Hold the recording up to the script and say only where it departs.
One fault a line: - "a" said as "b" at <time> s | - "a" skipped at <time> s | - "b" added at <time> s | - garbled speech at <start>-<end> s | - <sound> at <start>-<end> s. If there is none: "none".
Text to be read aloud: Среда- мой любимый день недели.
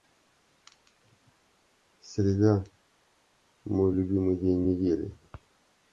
none